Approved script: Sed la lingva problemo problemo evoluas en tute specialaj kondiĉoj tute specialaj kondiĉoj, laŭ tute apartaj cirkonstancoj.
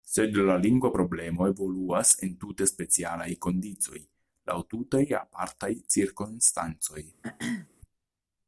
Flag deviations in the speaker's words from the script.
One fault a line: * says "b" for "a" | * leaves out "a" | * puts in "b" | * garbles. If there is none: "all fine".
* leaves out "problemo"
* leaves out "tute specialaj kondiĉoj"